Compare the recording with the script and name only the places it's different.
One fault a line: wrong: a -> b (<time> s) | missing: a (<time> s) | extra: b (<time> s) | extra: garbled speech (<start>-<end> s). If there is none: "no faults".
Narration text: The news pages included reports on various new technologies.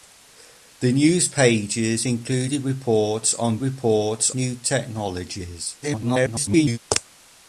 wrong: various -> reports (3.6 s)
extra: garbled speech (5.8-6.8 s)